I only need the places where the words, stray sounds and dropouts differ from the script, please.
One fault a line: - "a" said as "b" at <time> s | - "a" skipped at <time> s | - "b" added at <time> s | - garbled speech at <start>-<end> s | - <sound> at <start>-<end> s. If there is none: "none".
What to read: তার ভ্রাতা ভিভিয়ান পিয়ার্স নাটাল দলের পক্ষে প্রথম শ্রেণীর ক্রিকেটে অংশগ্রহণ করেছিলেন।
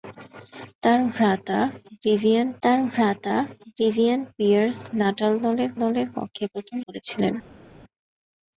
- "তার ভ্রাতা ভিভিয়ান" added at 2.6 s
- "দলের" added at 5.8 s
- "শ্রেণীর ক্রিকেটে অংশগ্রহণ" skipped at 6.8 s